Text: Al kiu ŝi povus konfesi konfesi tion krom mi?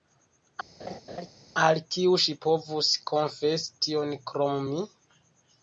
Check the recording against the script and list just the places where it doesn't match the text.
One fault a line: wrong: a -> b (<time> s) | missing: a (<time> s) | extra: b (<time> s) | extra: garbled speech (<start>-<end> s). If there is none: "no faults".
missing: konfesi (3.8 s)